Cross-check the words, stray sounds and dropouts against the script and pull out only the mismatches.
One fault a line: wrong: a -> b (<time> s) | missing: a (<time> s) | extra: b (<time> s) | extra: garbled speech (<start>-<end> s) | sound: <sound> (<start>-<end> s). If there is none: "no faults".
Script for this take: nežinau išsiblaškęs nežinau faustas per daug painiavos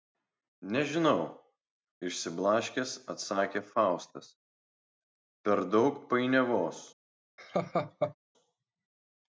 wrong: nežinau -> atsakė (3.2 s)
sound: laugh (7.4-8.1 s)